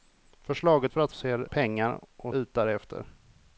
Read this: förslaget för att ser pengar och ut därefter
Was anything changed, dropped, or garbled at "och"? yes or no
no